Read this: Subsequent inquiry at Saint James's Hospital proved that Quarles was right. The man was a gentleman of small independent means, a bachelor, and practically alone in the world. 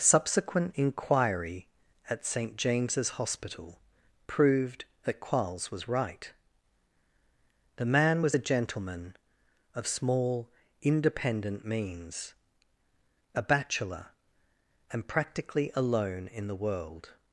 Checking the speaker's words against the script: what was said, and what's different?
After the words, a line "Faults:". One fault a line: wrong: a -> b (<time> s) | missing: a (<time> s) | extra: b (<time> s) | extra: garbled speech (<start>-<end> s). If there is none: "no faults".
Subsequent inquiry at Saint James's Hospital proved that Quarles was right. The man was a gentleman of small independent means, a bachelor, and practically alone in the world.
Faults:
no faults